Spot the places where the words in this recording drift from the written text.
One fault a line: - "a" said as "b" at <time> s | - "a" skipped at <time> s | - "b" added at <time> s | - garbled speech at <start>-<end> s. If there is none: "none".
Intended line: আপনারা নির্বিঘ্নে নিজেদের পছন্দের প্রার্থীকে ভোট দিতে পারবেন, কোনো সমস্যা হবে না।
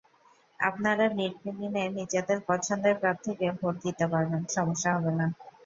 - "কোনো" skipped at 4.4 s